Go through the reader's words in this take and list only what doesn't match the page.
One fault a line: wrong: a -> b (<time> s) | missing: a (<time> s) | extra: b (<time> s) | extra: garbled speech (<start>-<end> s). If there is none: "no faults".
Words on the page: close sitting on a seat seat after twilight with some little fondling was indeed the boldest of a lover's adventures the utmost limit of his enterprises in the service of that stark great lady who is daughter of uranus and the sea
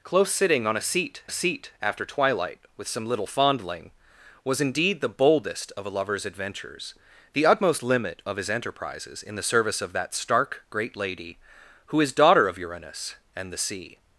no faults